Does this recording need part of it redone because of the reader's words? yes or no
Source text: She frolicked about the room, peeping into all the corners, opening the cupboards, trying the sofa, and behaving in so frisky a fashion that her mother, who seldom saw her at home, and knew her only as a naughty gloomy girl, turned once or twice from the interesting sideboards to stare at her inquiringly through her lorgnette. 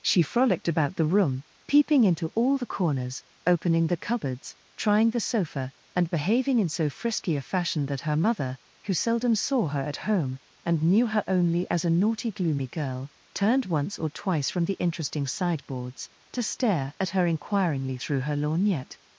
no